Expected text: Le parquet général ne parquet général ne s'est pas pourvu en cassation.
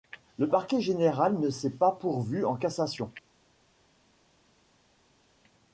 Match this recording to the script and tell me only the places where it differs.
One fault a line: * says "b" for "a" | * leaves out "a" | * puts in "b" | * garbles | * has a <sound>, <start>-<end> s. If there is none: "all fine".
* leaves out "parquet général ne"